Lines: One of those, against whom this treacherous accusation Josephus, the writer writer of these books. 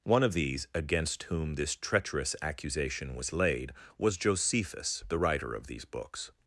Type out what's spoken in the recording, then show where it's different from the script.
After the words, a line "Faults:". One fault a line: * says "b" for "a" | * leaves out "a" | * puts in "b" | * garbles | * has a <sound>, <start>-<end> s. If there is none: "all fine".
One of these, against whom this treacherous accusation was laid, was Josephus, the writer of these books.
Faults:
* says "these" for "those"
* puts in "was laid was"
* leaves out "writer"